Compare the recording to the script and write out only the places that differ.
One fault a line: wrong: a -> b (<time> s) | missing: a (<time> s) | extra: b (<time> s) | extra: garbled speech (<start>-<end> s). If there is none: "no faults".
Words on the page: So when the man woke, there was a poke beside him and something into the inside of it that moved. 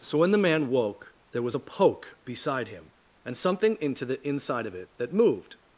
no faults